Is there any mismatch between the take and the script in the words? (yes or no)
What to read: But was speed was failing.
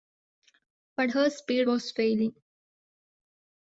yes